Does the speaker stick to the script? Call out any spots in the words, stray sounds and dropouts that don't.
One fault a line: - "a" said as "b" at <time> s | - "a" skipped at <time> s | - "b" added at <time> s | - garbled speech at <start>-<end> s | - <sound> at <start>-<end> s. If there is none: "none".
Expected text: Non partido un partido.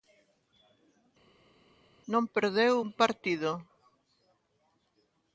- "partido" said as "perdeu" at 2.3 s